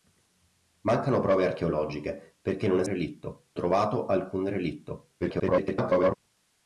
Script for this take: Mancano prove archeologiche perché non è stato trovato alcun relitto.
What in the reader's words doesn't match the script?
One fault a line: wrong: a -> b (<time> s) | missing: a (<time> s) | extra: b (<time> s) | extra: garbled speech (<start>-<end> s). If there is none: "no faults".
wrong: stato -> relitto (2.8 s)
extra: garbled speech (5.2-6.2 s)